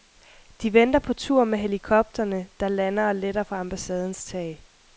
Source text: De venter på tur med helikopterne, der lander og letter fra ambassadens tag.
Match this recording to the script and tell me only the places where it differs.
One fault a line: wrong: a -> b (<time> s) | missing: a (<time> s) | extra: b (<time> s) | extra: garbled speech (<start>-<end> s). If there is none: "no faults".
no faults